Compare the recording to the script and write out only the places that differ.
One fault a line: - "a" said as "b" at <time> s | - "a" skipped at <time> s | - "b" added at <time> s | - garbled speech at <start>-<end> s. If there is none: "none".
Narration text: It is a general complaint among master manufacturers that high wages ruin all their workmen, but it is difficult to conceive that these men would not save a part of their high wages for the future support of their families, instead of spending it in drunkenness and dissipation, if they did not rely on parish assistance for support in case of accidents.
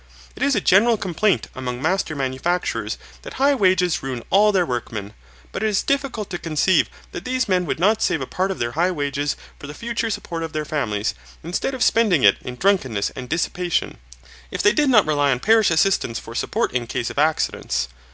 none